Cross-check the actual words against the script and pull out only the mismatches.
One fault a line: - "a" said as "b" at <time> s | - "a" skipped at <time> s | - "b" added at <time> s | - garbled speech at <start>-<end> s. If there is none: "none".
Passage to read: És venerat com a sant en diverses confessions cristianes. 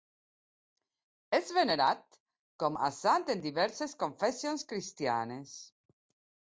none